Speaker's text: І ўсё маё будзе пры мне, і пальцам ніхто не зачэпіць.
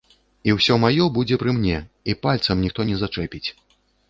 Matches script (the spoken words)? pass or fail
pass